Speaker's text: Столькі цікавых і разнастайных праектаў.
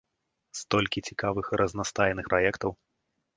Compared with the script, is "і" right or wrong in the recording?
right